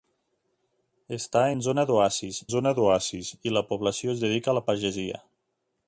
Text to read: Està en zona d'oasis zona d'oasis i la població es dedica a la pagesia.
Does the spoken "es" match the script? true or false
true